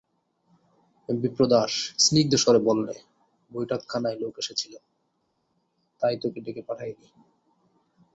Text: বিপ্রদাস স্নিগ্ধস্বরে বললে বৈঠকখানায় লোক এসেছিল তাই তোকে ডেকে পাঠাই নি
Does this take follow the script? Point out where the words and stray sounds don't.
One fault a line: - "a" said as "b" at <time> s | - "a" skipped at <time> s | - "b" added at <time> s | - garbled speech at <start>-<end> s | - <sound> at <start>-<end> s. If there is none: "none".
none